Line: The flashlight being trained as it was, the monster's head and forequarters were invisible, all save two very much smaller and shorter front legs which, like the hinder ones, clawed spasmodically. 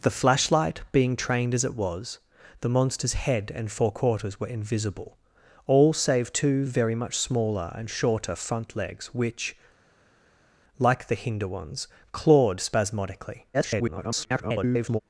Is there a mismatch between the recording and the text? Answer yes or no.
yes